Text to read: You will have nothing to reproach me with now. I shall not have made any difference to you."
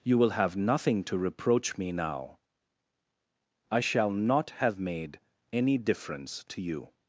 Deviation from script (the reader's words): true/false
true